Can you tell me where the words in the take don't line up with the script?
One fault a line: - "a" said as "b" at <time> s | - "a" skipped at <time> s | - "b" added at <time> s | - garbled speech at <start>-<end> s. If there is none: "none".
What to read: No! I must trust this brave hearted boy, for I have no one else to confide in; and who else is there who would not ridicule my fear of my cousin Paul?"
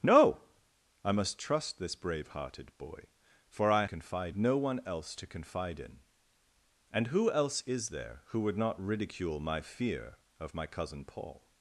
- "have" said as "confide" at 3.8 s